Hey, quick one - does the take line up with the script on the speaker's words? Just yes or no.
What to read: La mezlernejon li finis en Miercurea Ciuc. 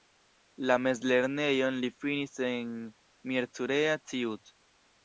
yes